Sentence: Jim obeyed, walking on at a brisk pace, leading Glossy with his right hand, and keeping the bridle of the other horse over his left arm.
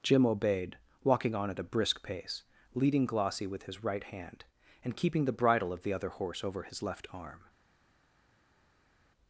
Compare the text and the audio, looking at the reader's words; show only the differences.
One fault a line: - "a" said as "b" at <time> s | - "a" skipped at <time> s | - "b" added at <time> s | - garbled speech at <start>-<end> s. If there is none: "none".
none